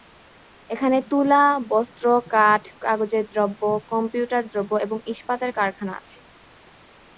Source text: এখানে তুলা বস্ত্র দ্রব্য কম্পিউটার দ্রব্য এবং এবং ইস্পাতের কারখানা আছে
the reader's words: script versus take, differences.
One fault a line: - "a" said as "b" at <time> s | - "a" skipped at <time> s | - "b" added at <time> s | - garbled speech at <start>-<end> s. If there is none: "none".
- "কাঠ কাগজের" added at 2.3 s
- "এবং" skipped at 5.0 s